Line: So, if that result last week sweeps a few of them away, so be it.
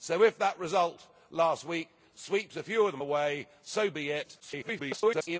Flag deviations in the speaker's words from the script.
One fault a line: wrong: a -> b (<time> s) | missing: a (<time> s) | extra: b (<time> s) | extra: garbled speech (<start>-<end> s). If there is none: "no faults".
extra: garbled speech (4.4-5.4 s)